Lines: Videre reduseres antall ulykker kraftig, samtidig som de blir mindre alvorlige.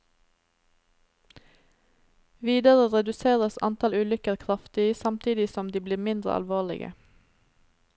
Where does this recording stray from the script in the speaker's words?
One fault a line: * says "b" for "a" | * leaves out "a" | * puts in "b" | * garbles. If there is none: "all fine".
all fine